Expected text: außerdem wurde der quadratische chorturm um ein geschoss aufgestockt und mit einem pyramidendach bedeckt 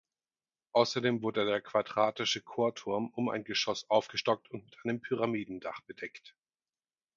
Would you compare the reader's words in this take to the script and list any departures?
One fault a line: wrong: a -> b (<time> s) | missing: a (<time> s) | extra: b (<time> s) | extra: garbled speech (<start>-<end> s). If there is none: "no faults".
no faults